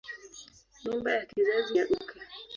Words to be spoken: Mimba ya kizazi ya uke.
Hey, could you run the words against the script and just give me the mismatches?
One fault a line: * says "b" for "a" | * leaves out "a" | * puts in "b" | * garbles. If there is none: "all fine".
all fine